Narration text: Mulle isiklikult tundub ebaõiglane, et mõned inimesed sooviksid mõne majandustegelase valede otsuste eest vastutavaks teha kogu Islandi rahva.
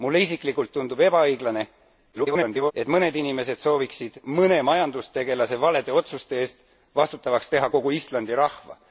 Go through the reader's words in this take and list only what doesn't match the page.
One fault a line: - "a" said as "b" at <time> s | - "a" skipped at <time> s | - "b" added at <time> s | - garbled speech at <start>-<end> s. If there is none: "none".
- garbled speech at 2.1-2.7 s